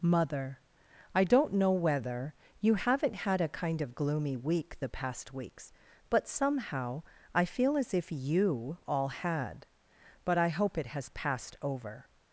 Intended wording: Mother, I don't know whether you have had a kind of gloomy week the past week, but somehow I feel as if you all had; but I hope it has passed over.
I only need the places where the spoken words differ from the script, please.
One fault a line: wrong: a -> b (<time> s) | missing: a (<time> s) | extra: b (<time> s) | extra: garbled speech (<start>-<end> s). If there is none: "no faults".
wrong: have -> haven't (2.8 s)
wrong: week -> weeks (5.3 s)